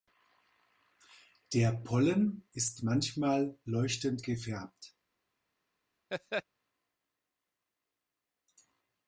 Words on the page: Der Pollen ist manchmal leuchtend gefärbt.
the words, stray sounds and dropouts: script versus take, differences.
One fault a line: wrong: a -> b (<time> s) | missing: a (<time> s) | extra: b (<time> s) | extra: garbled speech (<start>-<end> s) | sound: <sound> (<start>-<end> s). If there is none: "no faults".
sound: laugh (6.1-6.4 s)